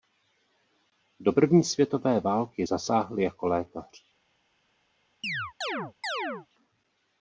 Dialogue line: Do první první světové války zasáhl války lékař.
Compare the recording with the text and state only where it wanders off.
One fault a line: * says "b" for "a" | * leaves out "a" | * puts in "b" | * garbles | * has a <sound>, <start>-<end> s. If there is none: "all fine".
* leaves out "první"
* says "jako" for "války"
* has a chirp, 5.2-6.5 s